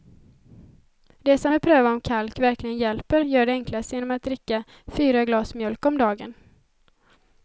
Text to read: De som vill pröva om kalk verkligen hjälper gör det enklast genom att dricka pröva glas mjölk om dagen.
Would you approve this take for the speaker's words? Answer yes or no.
no